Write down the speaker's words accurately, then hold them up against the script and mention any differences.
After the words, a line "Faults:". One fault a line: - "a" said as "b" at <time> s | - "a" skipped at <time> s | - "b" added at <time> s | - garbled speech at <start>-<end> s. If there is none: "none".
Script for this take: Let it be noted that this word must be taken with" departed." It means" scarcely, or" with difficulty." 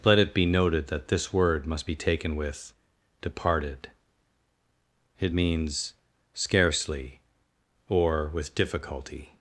Let it be noted that this word must be taken with" departed." It means" scarcely, or" with difficulty."
Faults:
none